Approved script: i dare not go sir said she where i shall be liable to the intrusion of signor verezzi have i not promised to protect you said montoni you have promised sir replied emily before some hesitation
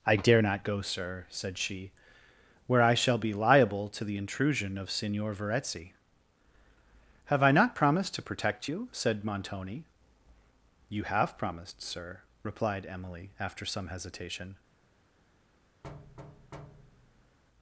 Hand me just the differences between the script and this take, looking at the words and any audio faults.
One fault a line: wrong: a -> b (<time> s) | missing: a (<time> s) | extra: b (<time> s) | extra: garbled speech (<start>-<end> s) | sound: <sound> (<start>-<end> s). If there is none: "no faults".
wrong: before -> after (13.4 s)
sound: thud (15.8-17.4 s)